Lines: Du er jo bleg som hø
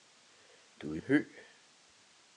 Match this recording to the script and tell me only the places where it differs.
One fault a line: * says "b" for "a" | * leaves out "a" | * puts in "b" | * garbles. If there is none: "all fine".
* leaves out "jo bleg som"